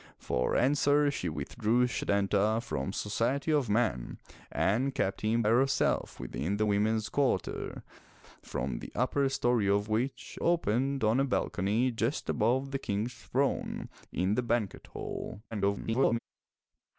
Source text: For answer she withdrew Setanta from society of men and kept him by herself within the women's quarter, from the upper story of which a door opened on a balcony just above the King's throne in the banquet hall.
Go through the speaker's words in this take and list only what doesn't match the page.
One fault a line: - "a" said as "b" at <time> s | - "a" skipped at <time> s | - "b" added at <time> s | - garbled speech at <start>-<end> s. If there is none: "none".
- "by" skipped at 5.4 s
- "a door" skipped at 10.4 s
- garbled speech at 15.5-16.2 s